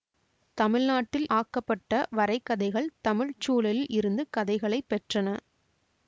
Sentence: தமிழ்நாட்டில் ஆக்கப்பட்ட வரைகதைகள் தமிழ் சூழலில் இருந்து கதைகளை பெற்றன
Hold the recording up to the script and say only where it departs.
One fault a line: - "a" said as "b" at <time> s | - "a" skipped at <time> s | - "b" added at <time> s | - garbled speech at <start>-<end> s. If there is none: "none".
none